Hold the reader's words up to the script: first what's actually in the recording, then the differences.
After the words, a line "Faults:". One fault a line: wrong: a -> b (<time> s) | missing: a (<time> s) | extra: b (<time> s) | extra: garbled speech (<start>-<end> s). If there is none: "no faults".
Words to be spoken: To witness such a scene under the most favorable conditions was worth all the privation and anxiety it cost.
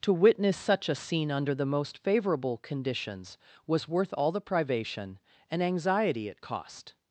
To witness such a scene under the most favorable conditions was worth all the privation and anxiety it cost.
Faults:
no faults